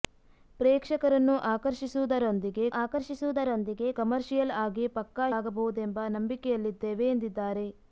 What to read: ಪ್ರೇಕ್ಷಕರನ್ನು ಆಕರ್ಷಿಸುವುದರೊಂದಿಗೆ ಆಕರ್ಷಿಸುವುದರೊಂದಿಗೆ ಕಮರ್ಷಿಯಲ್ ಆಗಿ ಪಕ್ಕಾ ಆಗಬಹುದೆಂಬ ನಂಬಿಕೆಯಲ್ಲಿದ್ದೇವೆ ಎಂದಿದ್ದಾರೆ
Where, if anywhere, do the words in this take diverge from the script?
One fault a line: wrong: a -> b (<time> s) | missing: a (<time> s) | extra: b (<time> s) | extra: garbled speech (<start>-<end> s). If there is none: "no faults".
no faults